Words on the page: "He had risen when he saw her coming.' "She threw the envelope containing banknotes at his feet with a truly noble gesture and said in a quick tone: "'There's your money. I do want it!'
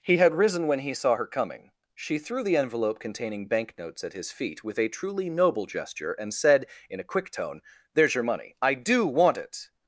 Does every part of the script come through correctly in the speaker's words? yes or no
yes